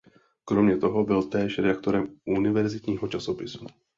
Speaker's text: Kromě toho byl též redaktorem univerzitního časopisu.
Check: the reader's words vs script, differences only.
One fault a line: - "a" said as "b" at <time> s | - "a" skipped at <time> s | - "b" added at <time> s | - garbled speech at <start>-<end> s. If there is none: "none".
none